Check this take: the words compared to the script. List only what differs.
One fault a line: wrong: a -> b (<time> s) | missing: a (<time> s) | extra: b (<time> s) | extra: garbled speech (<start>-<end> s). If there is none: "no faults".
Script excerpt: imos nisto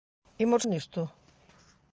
no faults